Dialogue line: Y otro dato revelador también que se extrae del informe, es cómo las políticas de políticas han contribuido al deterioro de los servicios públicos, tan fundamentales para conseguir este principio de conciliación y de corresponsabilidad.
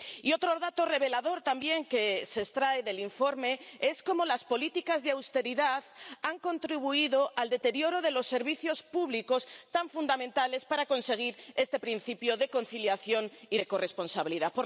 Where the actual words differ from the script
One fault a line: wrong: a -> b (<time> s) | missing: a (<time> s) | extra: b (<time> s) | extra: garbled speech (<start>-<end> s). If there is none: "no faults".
wrong: políticas -> austeridad (5.1 s)